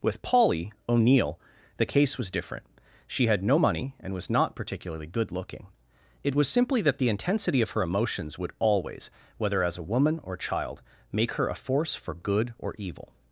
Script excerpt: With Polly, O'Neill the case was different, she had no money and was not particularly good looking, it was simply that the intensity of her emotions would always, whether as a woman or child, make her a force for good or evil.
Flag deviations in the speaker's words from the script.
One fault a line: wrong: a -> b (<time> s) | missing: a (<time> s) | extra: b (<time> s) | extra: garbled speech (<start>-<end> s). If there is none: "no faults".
no faults